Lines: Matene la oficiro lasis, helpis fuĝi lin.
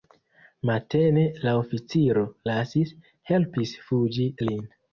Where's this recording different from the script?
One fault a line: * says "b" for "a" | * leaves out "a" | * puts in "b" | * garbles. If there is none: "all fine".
all fine